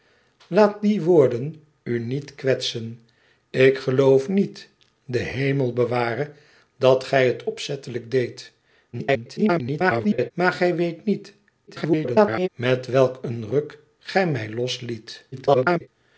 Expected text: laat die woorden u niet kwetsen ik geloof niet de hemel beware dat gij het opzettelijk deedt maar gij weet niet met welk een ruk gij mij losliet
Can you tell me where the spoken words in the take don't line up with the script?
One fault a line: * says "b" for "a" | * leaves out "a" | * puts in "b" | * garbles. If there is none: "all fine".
* garbles
* garbles
* garbles